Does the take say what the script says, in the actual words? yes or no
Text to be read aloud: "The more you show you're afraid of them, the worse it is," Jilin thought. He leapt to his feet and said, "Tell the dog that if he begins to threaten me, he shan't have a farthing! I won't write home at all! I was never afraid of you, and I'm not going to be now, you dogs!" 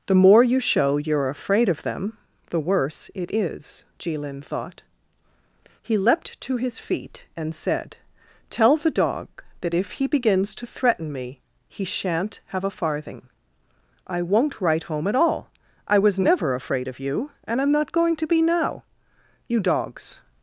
yes